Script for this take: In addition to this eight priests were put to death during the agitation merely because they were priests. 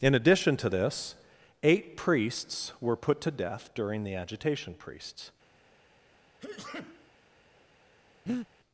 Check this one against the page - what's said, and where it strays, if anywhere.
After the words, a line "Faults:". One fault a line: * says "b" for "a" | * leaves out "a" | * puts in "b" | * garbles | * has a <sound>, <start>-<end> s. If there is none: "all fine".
In addition to this eight priests were put to death during the agitation priests.
Faults:
* leaves out "merely because they were"
* has a sneeze, 6.4-7.1 s
* has a breath, 8.3-8.5 s